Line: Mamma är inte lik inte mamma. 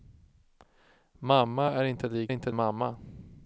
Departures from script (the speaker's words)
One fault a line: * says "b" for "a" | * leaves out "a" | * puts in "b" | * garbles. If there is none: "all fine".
all fine